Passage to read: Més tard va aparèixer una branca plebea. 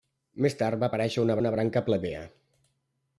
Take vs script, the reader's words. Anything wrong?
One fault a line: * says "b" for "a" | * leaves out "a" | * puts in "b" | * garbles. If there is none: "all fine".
* puts in "una"